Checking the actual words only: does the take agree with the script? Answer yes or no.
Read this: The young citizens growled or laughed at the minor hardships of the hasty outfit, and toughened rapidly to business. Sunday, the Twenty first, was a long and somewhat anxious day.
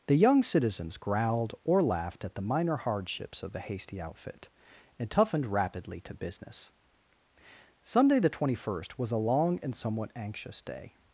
yes